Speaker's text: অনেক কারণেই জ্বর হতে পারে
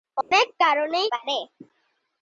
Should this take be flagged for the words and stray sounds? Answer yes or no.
yes